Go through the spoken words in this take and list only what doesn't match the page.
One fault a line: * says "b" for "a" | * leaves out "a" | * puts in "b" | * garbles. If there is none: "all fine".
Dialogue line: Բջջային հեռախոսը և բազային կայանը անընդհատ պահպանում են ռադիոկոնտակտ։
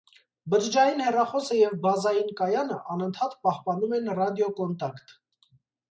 all fine